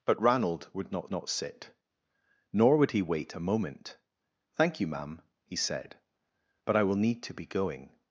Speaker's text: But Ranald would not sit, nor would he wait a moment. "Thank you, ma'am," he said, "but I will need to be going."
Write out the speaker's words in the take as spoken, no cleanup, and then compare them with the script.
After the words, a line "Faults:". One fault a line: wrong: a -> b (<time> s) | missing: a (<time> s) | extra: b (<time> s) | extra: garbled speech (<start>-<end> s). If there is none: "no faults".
But Ranald would not not sit, nor would he wait a moment. "Thank you, ma'am," he said, "but I will need to be going."
Faults:
extra: not (1.1 s)